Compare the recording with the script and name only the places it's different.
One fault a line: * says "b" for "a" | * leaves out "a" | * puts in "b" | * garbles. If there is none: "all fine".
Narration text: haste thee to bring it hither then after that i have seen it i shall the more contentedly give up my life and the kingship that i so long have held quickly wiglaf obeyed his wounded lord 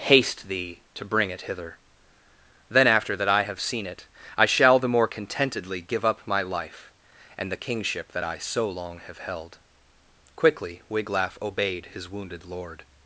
all fine